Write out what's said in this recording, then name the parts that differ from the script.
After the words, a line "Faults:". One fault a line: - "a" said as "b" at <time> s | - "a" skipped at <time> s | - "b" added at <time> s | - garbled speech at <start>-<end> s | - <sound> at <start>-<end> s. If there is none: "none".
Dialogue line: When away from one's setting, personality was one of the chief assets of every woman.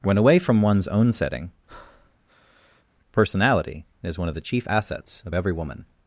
When away from one's own setting, personality is one of the chief assets of every woman.
Faults:
- "own" added at 0.9 s
- breath at 1.7-2.8 s
- "was" said as "is" at 4.0 s